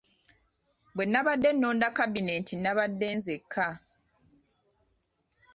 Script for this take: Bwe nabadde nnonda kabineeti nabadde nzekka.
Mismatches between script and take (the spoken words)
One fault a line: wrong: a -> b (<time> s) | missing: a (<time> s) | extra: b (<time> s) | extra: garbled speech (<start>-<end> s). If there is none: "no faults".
no faults